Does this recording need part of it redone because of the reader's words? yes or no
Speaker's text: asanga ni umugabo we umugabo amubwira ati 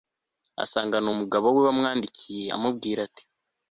yes